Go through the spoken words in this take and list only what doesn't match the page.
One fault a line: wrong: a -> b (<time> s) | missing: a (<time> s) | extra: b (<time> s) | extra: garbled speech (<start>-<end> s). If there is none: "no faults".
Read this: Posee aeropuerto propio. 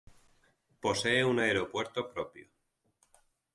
extra: un (1.2 s)